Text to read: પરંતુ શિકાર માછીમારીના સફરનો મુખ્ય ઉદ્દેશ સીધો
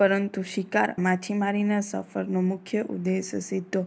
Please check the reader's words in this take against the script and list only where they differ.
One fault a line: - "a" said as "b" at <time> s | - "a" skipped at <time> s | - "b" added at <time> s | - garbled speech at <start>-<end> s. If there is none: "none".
none